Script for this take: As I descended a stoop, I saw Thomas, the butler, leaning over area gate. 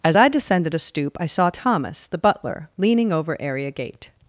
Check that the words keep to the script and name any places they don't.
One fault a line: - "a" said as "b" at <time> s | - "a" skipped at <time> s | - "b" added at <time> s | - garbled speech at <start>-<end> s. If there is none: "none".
none